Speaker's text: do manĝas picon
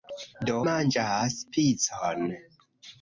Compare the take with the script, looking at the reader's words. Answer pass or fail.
pass